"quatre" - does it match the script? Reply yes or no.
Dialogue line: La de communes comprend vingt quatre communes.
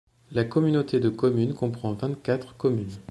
yes